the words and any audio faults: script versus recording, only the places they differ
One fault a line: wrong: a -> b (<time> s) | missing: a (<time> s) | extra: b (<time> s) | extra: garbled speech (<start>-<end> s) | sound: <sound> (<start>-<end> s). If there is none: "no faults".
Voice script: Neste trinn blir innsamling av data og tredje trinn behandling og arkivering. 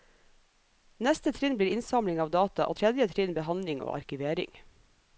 no faults